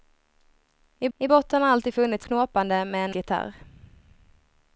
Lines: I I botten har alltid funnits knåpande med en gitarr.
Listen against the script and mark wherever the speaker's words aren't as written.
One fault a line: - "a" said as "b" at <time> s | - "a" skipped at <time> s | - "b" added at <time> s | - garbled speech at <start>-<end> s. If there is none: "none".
none